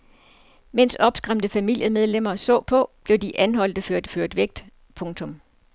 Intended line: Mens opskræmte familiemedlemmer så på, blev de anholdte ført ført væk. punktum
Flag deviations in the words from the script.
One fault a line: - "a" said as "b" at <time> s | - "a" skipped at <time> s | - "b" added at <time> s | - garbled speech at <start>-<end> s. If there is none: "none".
none